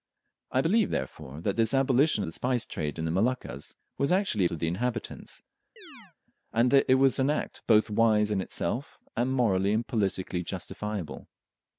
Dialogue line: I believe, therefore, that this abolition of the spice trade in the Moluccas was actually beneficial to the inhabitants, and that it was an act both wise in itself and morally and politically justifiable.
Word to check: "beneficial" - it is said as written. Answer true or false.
false